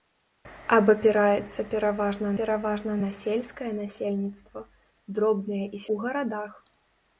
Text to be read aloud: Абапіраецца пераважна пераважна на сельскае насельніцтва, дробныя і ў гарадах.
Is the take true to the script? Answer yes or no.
yes